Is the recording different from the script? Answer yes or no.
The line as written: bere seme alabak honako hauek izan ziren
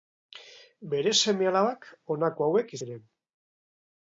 yes